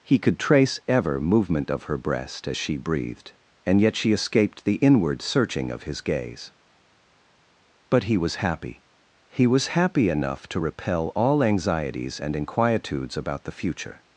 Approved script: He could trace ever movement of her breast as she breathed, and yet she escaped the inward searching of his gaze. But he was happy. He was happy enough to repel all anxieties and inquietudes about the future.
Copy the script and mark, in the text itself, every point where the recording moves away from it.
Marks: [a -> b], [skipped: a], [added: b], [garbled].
He could trace ever movement of her breast as she breathed, and yet she escaped the inward searching of his gaze. But he was happy. He was happy enough to repel all anxieties and inquietudes about the future.